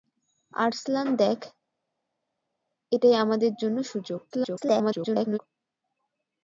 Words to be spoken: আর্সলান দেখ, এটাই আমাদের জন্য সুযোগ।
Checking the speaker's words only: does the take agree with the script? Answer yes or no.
no